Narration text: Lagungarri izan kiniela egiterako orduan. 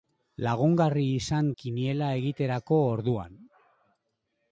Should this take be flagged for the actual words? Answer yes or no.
no